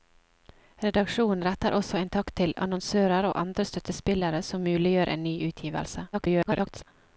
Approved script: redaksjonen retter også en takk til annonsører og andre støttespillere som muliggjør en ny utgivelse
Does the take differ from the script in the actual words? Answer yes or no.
yes